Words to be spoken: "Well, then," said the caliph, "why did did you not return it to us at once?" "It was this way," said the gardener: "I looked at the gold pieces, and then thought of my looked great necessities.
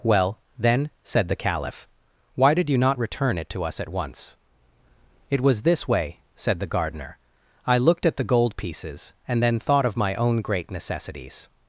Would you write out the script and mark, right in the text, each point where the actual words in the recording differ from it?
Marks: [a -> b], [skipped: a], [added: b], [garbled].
"Well, then," said the caliph, "why did [skipped: did] you not return it to us at once?" "It was this way," said the gardener: "I looked at the gold pieces, and then thought of my [looked -> own] great necessities.